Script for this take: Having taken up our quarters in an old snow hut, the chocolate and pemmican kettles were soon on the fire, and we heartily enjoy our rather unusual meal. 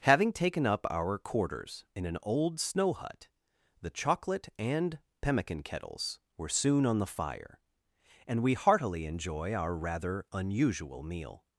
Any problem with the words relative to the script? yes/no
no